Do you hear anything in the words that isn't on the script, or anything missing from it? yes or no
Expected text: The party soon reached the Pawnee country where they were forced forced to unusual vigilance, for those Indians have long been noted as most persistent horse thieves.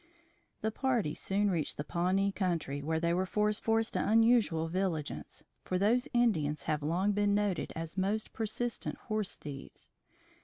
no